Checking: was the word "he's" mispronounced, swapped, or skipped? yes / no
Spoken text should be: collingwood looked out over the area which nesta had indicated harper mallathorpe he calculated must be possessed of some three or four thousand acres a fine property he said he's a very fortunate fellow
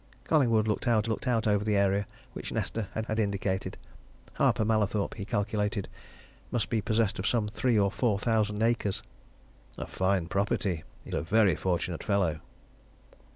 yes